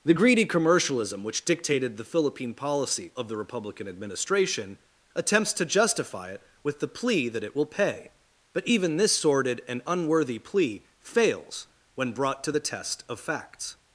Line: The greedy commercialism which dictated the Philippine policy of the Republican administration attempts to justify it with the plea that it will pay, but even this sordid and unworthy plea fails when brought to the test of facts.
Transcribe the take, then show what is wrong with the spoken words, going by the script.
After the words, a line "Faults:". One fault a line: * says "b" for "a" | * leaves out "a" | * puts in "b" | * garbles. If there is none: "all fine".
The greedy commercialism which dictated the Philippine policy of the Republican administration attempts to justify it with the plea that it will pay, but even this sordid and unworthy plea fails when brought to the test of facts.
Faults:
all fine